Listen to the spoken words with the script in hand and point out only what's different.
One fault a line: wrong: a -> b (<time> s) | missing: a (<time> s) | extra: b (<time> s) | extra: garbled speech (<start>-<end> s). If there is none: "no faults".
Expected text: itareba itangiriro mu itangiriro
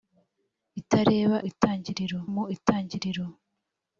no faults